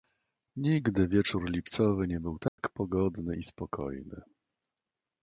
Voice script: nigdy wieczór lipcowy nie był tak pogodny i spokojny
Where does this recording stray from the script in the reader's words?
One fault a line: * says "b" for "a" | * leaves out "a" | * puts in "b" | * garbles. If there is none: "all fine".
all fine